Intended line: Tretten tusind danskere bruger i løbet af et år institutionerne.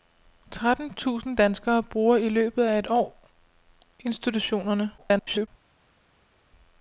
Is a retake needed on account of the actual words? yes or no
yes